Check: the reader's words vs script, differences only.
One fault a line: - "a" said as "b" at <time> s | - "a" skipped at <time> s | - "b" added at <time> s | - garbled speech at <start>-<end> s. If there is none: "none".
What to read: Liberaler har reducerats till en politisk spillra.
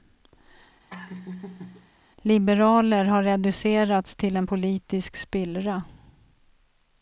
none